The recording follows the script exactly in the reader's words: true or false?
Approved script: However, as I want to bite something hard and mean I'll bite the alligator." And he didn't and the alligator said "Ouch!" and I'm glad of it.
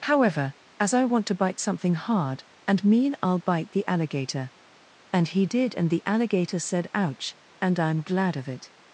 false